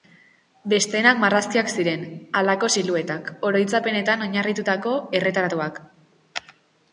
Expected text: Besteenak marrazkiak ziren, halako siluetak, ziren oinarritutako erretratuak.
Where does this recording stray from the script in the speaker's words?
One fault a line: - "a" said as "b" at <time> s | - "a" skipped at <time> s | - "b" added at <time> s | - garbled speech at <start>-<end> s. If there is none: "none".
- "ziren" said as "oroitzapenetan" at 3.5 s